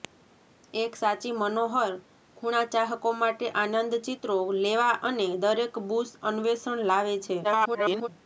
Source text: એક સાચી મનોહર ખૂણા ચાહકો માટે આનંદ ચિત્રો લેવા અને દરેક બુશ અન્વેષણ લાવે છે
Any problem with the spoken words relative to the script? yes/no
yes